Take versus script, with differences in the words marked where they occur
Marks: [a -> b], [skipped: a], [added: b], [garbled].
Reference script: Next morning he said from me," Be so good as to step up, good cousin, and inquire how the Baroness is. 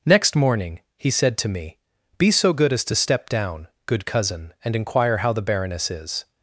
Next morning he said [from -> to] me," Be so good as to step [up, -> down] good cousin, and inquire how the Baroness is.